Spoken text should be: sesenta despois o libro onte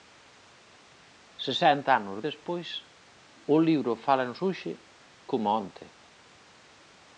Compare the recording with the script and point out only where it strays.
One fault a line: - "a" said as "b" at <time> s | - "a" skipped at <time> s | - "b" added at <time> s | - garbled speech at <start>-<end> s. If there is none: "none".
- "anos" added at 2.0 s
- "fálanos hoxe coma" added at 4.0 s